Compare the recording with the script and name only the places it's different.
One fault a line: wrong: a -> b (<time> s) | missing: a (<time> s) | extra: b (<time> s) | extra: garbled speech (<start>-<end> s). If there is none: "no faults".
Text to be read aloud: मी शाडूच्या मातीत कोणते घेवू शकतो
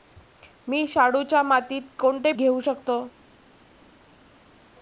no faults